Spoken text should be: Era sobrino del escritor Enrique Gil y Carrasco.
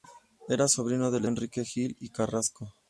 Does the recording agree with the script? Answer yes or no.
no